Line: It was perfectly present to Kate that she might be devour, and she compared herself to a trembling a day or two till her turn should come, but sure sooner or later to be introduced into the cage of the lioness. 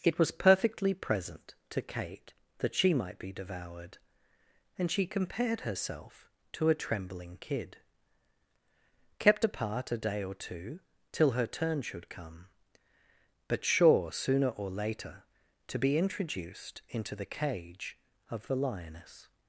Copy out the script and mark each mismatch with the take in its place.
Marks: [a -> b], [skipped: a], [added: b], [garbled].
It was perfectly present to Kate that she might be [devour, -> devoured] and she compared herself to a trembling [added: kid kept apart] a day or two till her turn should come, but sure sooner or later to be introduced into the cage of the lioness.